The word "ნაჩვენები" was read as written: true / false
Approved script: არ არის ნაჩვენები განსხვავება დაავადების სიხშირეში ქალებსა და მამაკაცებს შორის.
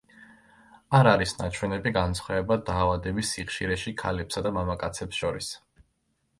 true